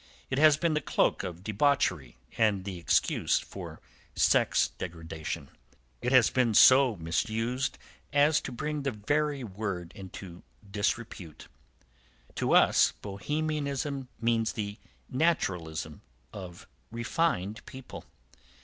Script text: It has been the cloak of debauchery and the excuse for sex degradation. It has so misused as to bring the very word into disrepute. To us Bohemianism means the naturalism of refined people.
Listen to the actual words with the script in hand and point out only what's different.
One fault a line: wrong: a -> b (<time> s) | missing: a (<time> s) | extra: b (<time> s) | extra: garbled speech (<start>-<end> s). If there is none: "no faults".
extra: been (6.3 s)